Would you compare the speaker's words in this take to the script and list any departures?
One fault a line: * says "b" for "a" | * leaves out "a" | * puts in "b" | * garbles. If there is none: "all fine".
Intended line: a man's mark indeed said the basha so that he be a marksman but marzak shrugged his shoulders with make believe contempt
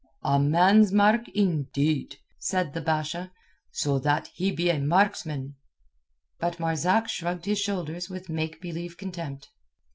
all fine